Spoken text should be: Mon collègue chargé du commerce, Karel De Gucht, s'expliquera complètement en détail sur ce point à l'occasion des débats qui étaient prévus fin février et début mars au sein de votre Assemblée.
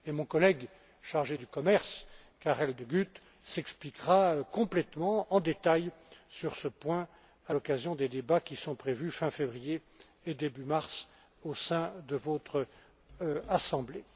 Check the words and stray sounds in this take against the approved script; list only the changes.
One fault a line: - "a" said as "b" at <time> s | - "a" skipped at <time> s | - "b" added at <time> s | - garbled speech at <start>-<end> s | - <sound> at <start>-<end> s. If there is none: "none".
- "étaient" said as "sont" at 8.6 s